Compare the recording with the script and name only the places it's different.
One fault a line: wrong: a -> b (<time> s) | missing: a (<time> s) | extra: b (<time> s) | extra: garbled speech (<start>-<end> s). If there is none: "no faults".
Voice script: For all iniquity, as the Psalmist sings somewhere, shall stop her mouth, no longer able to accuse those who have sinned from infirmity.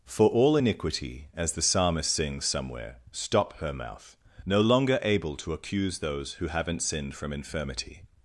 missing: shall (3.0 s)
wrong: have -> haven't (6.5 s)